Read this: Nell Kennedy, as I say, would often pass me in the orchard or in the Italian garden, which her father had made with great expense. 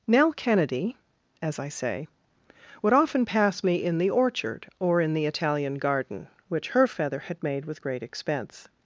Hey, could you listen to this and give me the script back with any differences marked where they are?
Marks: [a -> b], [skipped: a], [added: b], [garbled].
Nell Kennedy, as I say, would often pass me in the orchard or in the Italian garden, which her [father -> feather] had made with great expense.